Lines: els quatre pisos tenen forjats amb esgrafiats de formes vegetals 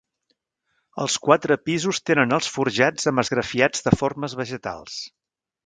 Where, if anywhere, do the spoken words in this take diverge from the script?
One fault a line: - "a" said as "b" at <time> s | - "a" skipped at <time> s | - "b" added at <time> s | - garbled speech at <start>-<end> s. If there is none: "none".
- "els" added at 2.4 s